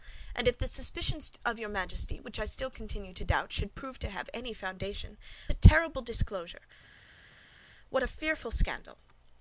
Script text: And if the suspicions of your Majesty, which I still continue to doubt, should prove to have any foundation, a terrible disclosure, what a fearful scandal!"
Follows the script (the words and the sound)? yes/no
yes